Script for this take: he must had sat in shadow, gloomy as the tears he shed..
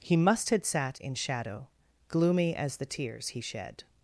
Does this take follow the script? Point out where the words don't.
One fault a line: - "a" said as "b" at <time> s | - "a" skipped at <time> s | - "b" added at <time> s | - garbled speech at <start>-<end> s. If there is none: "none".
none